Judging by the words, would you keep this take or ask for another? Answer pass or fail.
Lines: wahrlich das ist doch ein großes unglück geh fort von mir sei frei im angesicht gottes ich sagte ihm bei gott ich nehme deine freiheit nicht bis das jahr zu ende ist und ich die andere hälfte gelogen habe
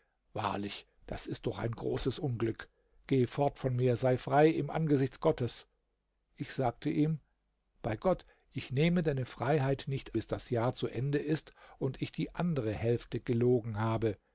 pass